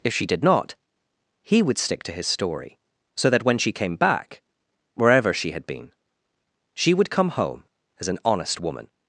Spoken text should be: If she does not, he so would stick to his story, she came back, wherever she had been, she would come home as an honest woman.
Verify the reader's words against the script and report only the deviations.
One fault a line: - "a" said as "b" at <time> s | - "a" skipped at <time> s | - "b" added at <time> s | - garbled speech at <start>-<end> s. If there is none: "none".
- "does" said as "did" at 0.2 s
- "so" skipped at 1.6 s
- "so that when" added at 3.1 s